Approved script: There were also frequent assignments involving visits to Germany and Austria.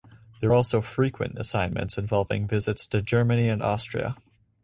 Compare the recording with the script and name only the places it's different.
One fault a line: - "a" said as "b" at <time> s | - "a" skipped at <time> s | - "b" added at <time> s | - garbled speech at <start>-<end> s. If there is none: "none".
- "were" skipped at 0.5 s